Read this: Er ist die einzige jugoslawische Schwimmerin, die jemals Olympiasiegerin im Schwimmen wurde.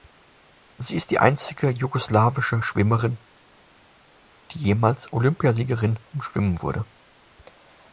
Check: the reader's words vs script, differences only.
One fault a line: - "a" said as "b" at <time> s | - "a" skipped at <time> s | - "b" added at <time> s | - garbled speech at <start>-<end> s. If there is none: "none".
- "Er" said as "Sie" at 0.8 s